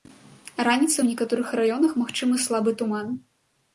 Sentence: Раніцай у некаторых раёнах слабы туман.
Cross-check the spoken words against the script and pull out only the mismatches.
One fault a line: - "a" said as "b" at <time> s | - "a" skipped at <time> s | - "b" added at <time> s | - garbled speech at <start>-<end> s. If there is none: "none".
- "магчымы" added at 2.0 s